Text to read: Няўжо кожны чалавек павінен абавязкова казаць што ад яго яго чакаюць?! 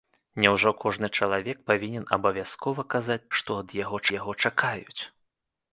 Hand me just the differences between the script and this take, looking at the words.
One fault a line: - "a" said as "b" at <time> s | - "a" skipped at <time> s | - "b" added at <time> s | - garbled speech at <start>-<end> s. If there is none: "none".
none